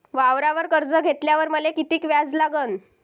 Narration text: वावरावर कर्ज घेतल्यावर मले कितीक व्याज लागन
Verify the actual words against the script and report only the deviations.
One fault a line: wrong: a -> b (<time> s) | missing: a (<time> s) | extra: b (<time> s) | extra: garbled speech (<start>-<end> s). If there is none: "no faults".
no faults